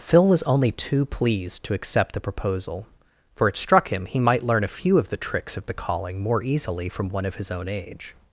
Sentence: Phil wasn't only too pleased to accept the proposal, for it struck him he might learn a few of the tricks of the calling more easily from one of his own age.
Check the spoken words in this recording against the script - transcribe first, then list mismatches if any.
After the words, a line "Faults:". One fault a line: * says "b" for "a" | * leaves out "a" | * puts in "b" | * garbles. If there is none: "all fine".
Phil was only too pleased to accept the proposal, for it struck him he might learn a few of the tricks of the calling more easily from one of his own age.
Faults:
* says "was" for "wasn't"